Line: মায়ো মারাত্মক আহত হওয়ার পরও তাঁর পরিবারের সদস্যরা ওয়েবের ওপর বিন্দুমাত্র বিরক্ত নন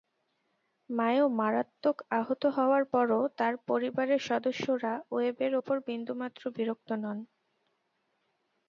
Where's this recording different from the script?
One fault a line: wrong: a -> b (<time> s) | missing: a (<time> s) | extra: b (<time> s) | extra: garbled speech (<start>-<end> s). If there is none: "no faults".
no faults